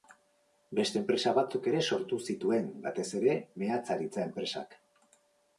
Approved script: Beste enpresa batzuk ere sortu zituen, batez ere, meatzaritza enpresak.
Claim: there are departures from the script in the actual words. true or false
false